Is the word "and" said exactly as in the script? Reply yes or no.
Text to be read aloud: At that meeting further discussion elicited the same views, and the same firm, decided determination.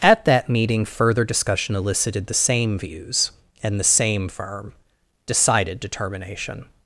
yes